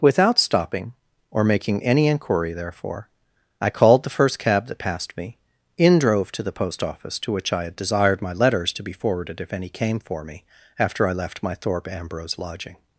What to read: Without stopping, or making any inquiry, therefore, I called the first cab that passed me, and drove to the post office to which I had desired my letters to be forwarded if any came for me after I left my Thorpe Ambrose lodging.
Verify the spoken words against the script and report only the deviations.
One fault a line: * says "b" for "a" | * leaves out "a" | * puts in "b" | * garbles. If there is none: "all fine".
* says "in" for "and"